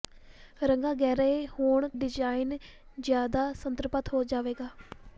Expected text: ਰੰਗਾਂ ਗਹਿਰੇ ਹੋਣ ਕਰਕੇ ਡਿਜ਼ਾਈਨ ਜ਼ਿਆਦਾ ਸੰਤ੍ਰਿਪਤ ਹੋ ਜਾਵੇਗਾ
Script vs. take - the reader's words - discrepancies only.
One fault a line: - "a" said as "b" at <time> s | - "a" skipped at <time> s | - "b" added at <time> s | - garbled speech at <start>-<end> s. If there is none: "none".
- "ਕਰਕੇ" skipped at 1.9 s